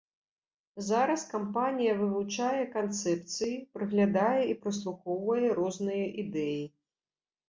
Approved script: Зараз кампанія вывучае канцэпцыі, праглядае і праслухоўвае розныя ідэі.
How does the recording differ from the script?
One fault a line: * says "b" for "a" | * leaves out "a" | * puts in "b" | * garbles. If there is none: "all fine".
all fine